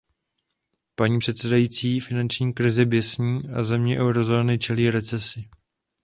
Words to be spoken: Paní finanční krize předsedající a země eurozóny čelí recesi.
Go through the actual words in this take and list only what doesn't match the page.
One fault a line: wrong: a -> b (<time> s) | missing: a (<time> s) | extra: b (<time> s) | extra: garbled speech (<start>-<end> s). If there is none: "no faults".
extra: předsedající (1.2 s)
wrong: předsedající -> běsní (2.8 s)